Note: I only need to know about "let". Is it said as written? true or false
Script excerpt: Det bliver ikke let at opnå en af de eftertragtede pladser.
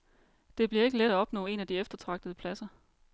true